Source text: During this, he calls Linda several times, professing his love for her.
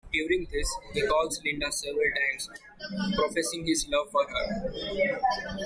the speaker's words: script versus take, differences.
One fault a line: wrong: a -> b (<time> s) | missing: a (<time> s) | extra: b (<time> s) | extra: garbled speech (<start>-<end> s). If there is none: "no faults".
no faults